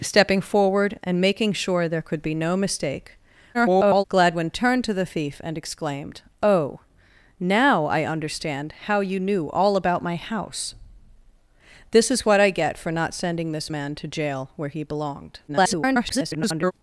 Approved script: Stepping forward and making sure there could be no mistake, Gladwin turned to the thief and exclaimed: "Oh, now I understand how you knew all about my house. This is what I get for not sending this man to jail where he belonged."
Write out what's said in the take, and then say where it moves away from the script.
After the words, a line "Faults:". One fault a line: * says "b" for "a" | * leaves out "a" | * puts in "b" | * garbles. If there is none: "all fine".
Stepping forward and making sure there could be no mistake, [garbled] Gladwin turned to the thief and exclaimed: "Oh, now I understand how you knew all about my house. This is what I get for not sending this man to jail where he belonged." [garbled]
Faults:
* garbles
* garbles